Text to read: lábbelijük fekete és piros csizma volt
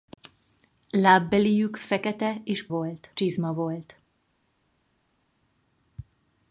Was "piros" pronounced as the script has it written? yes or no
no